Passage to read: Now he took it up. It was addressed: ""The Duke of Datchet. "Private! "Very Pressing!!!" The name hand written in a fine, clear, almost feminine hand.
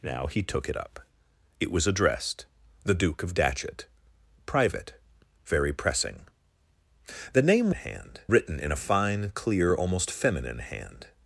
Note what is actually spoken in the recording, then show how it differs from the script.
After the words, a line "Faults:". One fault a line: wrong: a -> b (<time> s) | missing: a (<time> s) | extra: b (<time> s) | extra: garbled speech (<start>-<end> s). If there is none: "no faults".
Now he took it up. It was addressed: ""The Duke of Datchet. "Private! "Very Pressing!!!" The name hand written in a fine, clear, almost feminine hand.
Faults:
no faults